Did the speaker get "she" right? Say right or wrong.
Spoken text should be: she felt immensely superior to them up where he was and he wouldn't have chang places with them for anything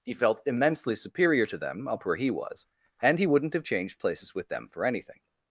wrong